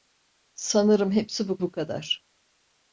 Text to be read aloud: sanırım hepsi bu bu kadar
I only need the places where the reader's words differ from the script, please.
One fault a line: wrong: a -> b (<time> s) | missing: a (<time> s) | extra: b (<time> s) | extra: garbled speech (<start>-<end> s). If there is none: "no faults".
no faults